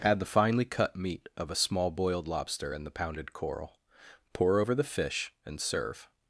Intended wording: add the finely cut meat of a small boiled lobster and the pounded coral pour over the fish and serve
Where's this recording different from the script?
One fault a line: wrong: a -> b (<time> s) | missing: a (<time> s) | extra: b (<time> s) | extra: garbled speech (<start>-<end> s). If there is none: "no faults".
no faults